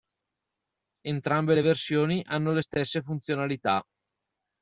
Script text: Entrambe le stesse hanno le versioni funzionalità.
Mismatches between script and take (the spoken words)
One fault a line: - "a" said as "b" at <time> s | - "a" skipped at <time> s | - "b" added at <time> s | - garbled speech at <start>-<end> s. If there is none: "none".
- "stesse" said as "versioni" at 1.6 s
- "versioni" said as "stesse" at 2.6 s